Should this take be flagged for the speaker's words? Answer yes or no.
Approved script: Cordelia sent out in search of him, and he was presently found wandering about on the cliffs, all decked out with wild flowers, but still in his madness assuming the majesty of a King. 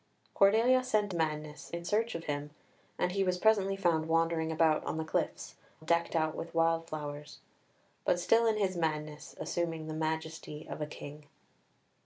yes